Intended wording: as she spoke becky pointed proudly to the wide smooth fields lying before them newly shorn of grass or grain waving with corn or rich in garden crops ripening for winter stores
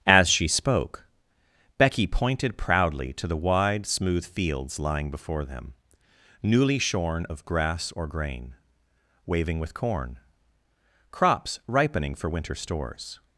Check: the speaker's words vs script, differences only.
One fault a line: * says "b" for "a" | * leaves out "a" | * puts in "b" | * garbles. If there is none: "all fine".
* leaves out "or rich in garden"